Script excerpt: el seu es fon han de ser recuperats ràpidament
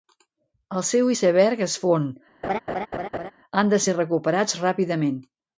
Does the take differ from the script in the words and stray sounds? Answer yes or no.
yes